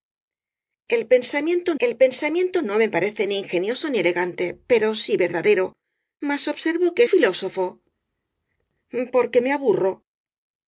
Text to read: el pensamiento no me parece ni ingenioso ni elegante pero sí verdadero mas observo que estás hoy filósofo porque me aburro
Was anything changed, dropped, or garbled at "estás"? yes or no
yes